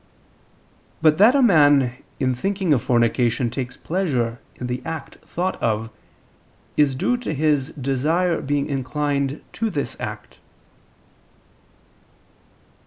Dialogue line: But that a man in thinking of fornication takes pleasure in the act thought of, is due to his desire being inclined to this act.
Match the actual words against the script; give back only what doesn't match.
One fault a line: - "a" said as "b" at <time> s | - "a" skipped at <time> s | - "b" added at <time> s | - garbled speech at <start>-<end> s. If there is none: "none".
none